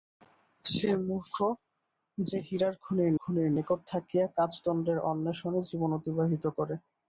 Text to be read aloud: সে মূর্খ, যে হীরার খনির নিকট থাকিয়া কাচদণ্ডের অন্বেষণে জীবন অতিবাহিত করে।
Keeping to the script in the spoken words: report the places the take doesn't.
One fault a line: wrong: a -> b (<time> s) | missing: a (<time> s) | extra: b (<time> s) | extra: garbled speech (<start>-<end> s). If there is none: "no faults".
extra: খনির (3.2 s)